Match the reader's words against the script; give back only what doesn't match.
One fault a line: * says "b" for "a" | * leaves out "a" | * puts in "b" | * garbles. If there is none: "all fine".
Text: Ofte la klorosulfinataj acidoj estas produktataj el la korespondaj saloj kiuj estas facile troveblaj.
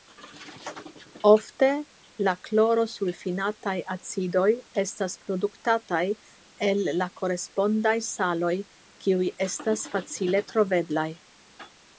all fine